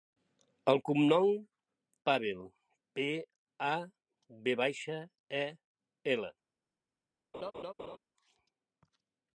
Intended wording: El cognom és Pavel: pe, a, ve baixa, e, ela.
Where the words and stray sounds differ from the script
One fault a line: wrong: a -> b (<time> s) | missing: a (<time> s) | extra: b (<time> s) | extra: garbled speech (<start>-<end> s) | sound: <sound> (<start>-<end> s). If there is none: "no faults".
missing: és (1.3 s)
sound: laugh (7.3-8.0 s)